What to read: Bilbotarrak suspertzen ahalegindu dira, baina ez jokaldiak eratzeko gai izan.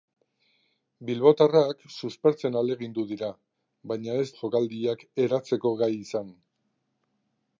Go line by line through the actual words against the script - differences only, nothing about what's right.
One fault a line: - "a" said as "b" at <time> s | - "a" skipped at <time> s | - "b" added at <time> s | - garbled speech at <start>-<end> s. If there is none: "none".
none